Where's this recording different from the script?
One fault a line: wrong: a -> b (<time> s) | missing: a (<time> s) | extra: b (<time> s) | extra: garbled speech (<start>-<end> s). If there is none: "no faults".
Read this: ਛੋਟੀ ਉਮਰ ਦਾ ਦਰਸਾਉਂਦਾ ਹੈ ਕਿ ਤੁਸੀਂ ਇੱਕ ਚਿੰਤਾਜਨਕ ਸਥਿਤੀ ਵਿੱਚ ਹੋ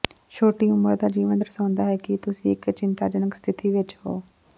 extra: ਜੀਵਨ (1.1 s)